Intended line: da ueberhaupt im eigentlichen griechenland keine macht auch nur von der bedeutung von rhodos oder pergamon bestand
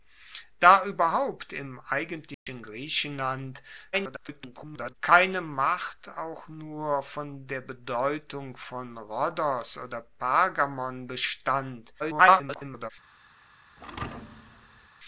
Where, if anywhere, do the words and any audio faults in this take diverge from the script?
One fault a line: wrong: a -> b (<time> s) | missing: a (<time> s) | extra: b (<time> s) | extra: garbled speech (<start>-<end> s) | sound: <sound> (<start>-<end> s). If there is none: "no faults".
sound: dropout (2.3-2.5 s)
extra: garbled speech (3.9-4.9 s)
extra: garbled speech (12.0-12.9 s)
sound: thud (13.8-14.9 s)